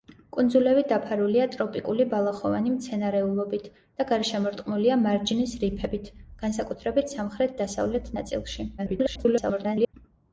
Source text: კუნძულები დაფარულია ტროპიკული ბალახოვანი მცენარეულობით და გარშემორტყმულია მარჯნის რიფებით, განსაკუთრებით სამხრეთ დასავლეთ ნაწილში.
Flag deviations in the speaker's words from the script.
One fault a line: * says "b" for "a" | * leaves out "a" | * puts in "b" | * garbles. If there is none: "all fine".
* garbles